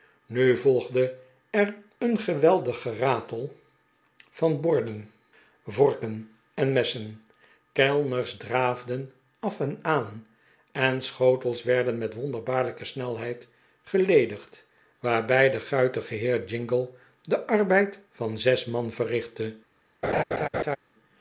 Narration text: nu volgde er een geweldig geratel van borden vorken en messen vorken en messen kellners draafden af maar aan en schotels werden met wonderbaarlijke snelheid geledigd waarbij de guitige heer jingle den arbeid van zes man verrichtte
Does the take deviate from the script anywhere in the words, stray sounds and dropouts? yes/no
yes